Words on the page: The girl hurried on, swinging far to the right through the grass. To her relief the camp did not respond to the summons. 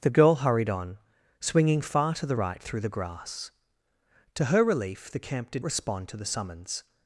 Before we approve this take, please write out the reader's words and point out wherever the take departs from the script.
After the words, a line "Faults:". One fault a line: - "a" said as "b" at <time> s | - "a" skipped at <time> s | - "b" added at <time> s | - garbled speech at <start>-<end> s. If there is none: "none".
The girl hurried on, swinging far to the right through the grass. To her relief the camp did respond to the summons.
Faults:
- "not" skipped at 5.6 s